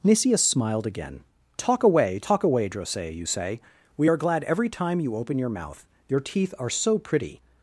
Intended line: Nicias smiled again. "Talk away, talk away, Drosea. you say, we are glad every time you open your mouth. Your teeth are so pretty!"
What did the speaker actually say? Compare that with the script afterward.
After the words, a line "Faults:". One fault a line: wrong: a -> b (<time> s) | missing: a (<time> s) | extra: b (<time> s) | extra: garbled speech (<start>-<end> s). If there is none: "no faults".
Nicias smiled again. "Talk away, talk away, Drosea. you say, we are glad every time you open your mouth. Your teeth are so pretty!"
Faults:
no faults